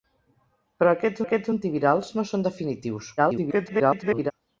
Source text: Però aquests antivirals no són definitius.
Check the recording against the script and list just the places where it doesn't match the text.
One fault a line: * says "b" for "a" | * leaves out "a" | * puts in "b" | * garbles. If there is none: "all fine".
* puts in "aquests"
* garbles